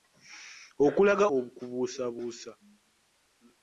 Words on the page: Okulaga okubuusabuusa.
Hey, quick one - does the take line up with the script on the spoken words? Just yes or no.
yes